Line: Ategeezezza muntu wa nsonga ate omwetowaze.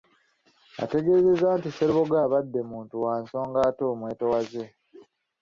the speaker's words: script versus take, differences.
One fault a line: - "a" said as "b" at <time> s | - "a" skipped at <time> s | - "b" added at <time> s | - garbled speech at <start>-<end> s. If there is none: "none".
- "nti Sserubogo abadde" added at 1.6 s